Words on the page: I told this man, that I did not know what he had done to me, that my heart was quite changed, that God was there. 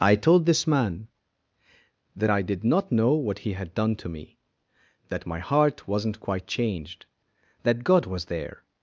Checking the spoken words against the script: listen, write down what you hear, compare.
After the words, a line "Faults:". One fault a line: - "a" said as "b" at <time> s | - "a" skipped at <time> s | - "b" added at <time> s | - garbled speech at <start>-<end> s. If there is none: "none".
I told this man, that I did not know what he had done to me, that my heart wasn't quite changed, that God was there.
Faults:
- "was" said as "wasn't" at 5.9 s